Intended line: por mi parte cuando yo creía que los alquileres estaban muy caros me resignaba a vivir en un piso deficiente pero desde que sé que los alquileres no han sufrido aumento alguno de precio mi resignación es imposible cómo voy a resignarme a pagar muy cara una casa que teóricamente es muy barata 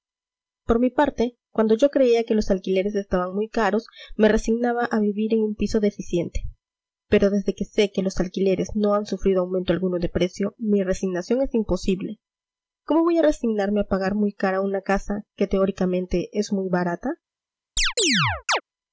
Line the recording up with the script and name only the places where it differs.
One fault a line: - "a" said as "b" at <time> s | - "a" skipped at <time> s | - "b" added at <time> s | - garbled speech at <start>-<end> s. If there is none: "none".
none